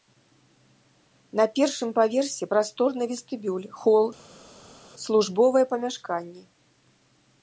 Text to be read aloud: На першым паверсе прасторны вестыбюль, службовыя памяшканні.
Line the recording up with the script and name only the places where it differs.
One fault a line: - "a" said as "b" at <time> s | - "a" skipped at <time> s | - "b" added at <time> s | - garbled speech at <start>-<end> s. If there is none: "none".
- "хол" added at 3.8 s